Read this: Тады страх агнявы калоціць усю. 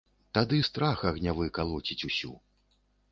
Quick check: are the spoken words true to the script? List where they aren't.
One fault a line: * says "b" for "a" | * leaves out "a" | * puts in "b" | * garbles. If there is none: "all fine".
all fine